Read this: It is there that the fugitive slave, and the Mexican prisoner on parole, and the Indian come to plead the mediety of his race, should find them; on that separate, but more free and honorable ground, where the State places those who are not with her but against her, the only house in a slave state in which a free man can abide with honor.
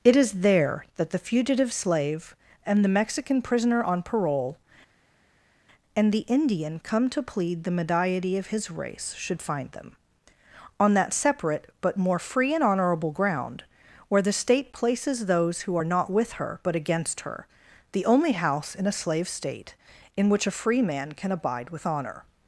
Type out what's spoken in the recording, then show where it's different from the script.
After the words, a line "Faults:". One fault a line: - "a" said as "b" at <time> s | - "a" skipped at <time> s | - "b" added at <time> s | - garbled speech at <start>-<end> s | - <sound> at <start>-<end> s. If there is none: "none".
It is there that the fugitive slave, and the Mexican prisoner on parole, and the Indian come to plead the mediety of his race, should find them; on that separate, but more free and honorable ground, where the State places those who are not with her but against her, the only house in a slave state in which a free man can abide with honor.
Faults:
none